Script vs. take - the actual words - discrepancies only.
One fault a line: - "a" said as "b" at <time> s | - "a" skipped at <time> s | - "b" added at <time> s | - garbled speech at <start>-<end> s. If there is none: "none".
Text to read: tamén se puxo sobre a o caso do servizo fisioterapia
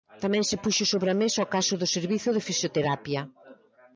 - "mesa" added at 1.2 s
- "de" added at 2.3 s